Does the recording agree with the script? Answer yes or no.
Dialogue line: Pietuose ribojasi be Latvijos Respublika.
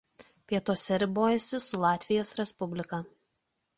no